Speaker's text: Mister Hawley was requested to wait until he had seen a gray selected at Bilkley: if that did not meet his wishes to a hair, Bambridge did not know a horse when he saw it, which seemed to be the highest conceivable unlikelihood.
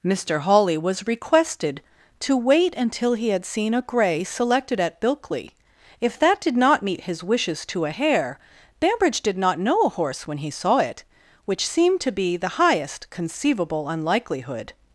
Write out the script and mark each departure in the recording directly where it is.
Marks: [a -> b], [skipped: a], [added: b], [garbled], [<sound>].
Mister Hawley was requested to wait until he had seen a gray selected at Bilkley: if that did not meet his wishes to a hair, Bambridge did not know a horse when he saw it, which seemed to be the highest conceivable unlikelihood.